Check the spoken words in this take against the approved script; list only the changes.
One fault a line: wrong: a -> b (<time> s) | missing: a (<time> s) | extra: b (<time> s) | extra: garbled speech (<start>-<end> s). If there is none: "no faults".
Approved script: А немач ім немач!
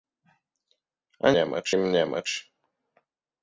no faults